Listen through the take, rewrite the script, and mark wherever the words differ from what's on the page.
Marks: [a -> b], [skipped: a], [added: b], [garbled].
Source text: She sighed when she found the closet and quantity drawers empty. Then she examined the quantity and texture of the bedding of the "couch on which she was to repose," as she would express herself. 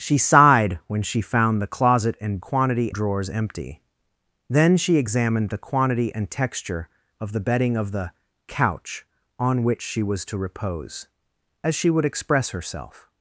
She sighed when she found the closet and quantity drawers empty. Then she examined the quantity and texture of the bedding of the "couch on which she was to repose," as she would express herself.